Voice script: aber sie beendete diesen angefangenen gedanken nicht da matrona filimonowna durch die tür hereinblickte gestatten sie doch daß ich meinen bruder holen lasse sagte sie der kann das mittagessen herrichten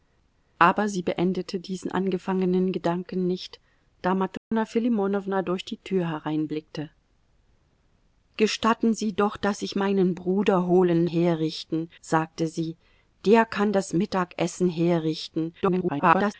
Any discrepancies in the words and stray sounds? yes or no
yes